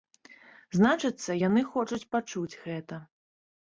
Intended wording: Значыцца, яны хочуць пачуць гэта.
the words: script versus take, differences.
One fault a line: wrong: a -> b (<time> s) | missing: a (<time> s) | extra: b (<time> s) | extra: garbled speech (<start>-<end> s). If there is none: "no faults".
no faults